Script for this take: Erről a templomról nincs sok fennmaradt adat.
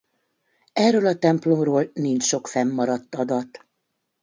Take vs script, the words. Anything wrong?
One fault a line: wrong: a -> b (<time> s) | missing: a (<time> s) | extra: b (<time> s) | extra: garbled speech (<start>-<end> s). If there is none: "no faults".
no faults